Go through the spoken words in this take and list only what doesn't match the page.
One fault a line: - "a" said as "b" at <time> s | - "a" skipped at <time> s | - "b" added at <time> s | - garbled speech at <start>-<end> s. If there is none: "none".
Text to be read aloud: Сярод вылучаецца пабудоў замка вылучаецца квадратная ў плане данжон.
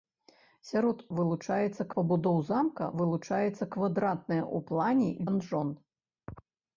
none